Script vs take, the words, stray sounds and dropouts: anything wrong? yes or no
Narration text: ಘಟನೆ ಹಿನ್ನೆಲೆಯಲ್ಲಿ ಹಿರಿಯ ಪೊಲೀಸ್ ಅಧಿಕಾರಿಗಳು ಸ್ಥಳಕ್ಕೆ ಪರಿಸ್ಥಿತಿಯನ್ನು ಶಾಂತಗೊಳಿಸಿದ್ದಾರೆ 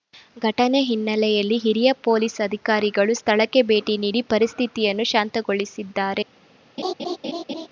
yes